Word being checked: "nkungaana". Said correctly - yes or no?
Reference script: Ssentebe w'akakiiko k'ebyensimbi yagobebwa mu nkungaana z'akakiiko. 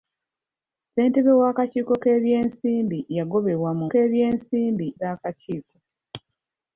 no